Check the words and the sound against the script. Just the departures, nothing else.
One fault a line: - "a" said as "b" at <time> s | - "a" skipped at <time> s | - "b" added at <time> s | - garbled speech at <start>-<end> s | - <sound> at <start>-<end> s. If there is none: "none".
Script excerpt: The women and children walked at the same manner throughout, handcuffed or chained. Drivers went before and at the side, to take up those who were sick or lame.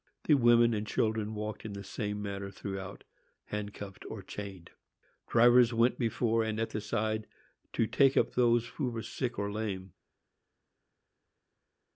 - "at" said as "in" at 1.6 s